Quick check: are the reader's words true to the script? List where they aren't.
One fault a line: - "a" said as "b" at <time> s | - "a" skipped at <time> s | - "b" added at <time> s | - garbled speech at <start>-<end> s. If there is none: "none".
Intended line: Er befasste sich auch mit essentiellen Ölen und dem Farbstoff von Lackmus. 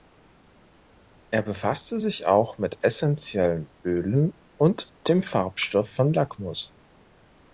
none